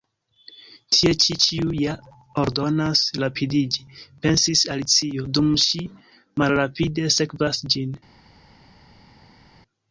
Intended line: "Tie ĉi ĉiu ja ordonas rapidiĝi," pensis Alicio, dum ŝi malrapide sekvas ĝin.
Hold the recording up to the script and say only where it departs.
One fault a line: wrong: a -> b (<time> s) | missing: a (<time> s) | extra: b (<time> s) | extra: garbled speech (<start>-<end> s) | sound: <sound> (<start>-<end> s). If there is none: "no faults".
no faults